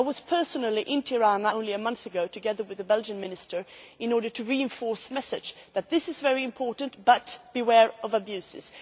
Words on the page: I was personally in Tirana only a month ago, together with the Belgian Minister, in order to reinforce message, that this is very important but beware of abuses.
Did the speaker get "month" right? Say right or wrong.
right